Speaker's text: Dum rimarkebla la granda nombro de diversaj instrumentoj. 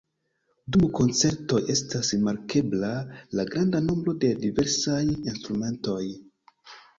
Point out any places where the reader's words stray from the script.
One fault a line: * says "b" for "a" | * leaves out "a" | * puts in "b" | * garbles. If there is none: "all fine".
* puts in "koncertoj estas"